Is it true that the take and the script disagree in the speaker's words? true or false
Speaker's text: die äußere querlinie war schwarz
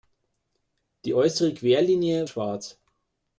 true